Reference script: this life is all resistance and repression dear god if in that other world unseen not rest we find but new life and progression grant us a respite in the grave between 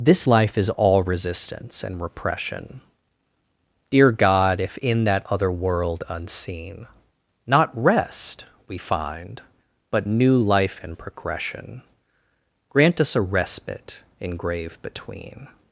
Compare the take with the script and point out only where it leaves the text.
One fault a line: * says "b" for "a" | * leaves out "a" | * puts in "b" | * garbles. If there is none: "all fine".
* leaves out "the"